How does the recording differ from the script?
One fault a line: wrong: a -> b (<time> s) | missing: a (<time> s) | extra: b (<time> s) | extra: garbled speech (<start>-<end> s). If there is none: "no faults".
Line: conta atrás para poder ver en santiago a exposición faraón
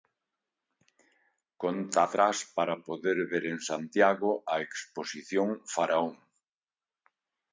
no faults